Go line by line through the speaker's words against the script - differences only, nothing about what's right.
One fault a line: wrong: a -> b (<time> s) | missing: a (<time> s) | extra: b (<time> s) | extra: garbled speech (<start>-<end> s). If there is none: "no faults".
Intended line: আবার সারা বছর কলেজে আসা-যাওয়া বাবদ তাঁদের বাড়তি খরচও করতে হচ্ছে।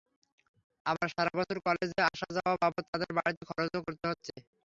no faults